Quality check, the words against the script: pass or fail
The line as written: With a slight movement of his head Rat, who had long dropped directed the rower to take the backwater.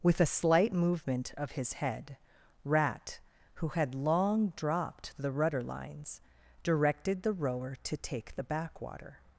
fail